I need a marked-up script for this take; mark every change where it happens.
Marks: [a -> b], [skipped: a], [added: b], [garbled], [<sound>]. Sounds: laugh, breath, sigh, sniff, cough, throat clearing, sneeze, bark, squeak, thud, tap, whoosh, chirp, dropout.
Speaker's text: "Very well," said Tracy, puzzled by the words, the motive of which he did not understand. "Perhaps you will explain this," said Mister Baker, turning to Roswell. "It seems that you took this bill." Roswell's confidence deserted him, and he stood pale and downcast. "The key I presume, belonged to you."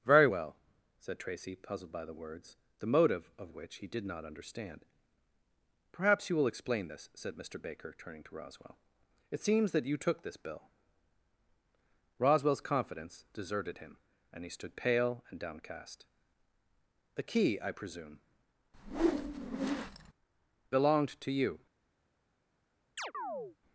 "Very well," said Tracy, puzzled by the words, the motive of which he did not understand. "Perhaps you will explain this," said Mister Baker, turning to Roswell. "It seems that you took this bill." Roswell's confidence deserted him, and he stood pale and downcast. "The key I presume, [whoosh] belonged to you." [chirp]